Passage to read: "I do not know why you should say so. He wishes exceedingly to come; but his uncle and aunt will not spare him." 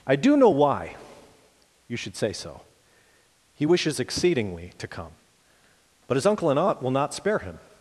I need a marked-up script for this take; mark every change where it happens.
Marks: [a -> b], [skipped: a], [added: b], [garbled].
"I do [skipped: not] know why you should say so. He wishes exceedingly to come; but his uncle and aunt will not spare him."